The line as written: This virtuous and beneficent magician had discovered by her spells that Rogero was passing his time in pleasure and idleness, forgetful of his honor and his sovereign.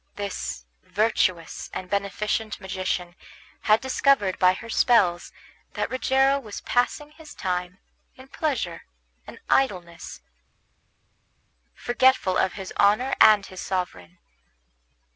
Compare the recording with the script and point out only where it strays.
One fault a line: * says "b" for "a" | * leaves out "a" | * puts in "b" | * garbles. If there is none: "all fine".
all fine